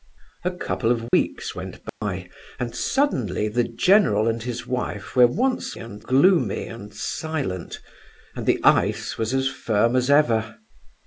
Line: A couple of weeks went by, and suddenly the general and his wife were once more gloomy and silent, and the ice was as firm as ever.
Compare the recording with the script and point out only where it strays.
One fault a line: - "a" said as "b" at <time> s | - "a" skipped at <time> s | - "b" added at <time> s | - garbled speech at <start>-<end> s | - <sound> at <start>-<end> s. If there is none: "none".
- dropout at 1.1-1.1 s
- dropout at 1.9-2.0 s
- "more" said as "and" at 5.8 s